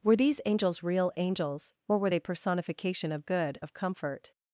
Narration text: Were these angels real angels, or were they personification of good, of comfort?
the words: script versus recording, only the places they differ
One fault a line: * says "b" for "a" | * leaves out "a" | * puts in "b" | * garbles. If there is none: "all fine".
all fine